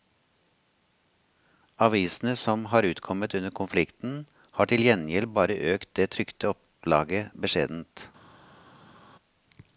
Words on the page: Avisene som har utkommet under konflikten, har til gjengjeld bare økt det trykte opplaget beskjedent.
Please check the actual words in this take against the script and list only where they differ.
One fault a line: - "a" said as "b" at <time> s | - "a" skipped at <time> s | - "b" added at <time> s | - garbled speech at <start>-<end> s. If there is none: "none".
none